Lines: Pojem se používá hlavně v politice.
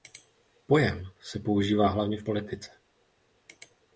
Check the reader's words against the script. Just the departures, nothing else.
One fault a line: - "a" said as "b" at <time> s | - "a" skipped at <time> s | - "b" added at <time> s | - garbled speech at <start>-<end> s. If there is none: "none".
none